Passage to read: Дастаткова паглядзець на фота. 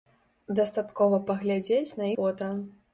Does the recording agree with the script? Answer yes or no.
yes